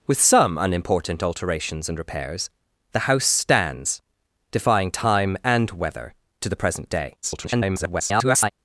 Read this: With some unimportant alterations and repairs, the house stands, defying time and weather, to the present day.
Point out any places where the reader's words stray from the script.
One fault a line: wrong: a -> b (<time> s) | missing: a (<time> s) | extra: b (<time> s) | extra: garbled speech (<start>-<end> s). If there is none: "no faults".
extra: garbled speech (7.2-8.5 s)